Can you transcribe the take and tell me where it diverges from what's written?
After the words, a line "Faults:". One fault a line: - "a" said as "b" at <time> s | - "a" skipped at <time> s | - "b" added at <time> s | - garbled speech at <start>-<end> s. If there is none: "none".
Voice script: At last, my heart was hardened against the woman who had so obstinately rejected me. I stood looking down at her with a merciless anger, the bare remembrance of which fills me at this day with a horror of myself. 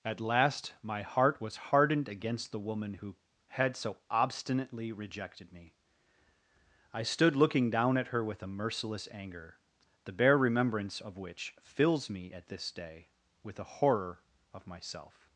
At last, my heart was hardened against the woman who had so obstinately rejected me. I stood looking down at her with a merciless anger, the bare remembrance of which fills me at this day with a horror of myself.
Faults:
none